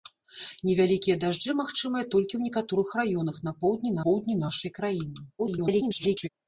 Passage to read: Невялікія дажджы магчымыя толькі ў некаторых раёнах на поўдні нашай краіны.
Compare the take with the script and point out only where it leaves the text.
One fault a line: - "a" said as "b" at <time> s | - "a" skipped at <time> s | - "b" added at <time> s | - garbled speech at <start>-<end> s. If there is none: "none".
- "поўдні" added at 4.1 s
- garbled speech at 5.4-6.3 s